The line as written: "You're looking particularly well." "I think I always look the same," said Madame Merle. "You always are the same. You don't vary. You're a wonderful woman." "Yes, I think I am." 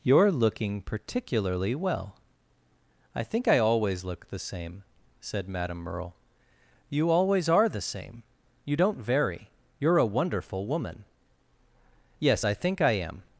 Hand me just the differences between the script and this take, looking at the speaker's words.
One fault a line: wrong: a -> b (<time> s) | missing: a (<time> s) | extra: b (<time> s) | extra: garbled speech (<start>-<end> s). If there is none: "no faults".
no faults